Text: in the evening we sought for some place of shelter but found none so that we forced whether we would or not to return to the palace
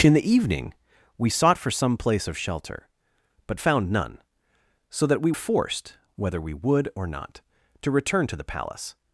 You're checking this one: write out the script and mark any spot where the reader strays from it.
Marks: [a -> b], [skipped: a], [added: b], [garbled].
in the evening we sought for some place of shelter but found none so that we forced whether we would or not to return to the palace